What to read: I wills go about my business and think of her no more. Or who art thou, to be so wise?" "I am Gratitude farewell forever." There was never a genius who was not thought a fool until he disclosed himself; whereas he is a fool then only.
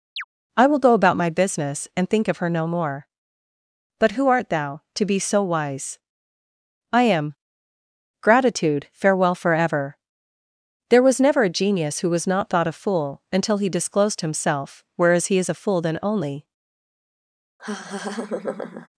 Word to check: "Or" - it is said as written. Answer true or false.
false